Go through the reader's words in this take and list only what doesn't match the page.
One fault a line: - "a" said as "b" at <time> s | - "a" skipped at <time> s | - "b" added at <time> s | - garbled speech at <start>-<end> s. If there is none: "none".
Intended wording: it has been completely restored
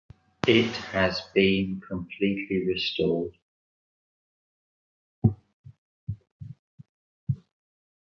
none